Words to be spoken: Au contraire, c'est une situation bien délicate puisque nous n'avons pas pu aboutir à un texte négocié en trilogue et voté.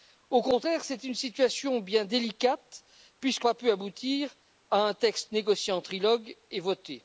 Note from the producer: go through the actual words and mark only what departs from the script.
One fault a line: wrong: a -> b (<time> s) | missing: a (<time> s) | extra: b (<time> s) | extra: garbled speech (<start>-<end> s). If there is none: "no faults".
missing: nous n'avons (3.5 s)